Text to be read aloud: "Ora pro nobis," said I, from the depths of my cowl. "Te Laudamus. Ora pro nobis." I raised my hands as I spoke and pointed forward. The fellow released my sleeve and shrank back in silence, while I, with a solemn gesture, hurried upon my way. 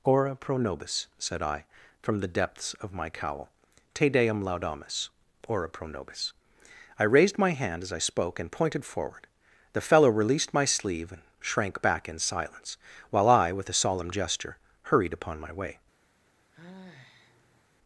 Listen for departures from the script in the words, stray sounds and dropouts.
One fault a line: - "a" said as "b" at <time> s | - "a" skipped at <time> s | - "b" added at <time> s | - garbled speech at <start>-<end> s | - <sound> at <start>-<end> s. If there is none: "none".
- "Deum" added at 4.1 s
- "hands" said as "hand" at 7.5 s
- sigh at 16.5-17.6 s